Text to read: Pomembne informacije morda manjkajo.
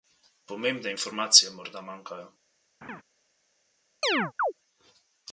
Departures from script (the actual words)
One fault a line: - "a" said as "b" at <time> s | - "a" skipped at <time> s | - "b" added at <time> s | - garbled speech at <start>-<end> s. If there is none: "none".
none